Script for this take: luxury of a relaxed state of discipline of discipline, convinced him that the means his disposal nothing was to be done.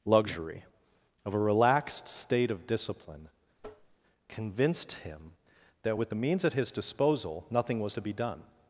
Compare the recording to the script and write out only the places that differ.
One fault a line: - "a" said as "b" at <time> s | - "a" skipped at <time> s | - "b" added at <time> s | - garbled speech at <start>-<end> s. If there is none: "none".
- "of discipline" skipped at 3.3 s
- "with" added at 6.0 s
- "at" added at 6.4 s